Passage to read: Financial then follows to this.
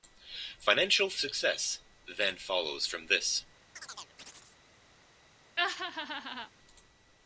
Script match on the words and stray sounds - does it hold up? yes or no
no